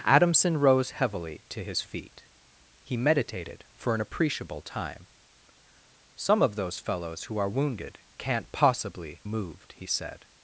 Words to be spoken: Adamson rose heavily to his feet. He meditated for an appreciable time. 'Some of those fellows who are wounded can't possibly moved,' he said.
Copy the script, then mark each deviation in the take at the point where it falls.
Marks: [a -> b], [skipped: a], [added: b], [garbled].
Adamson rose heavily to his feet. He meditated for an appreciable time. 'Some of those fellows who are wounded can't possibly moved,' he said.